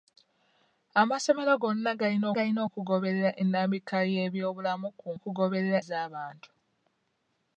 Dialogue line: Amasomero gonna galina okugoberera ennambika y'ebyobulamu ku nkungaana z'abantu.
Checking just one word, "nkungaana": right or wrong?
wrong